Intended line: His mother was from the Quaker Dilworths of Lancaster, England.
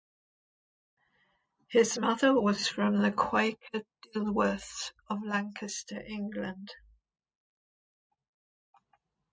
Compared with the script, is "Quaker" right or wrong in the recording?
right